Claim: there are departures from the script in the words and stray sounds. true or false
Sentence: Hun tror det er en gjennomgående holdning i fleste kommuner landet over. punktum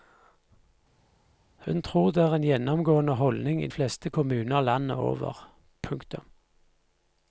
false